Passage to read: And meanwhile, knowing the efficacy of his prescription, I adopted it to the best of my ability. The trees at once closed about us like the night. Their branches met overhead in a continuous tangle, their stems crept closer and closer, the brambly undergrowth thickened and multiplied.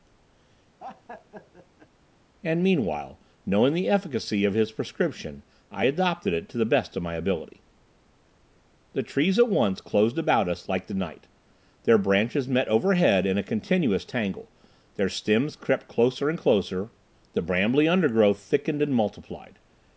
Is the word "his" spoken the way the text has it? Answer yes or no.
yes